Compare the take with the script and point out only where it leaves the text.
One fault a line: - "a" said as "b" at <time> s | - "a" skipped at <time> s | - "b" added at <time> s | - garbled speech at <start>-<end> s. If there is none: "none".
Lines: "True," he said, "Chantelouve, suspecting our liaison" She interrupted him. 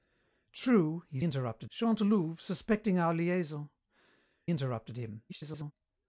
- "said" said as "interrupted" at 1.2 s
- "She" skipped at 3.7 s
- garbled speech at 5.3-5.7 s